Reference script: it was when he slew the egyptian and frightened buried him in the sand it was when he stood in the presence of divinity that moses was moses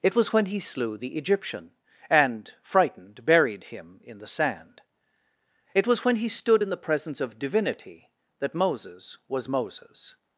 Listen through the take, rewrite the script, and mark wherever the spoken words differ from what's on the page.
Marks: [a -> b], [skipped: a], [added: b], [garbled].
it was when he slew the egyptian and frightened buried him in the sand it was when he stood in the presence of divinity that moses was moses